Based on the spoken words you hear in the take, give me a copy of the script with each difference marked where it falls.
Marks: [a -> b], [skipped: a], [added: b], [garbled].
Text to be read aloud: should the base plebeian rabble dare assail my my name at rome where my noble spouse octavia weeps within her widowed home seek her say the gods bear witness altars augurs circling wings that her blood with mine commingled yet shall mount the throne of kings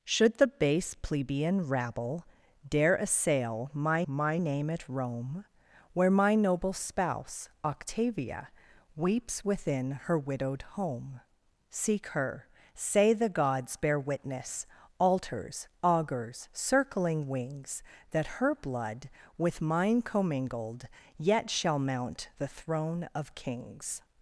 should the base plebeian rabble dare assail my my name at rome where my noble spouse octavia weeps within her widowed home seek her say the gods bear witness altars augurs circling wings that her blood with mine commingled yet shall mount the throne of kings